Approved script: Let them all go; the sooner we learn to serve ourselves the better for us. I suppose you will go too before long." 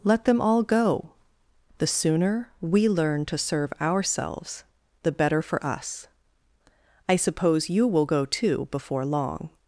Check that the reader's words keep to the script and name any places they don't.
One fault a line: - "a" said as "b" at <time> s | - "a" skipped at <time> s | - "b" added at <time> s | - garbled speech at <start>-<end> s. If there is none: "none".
none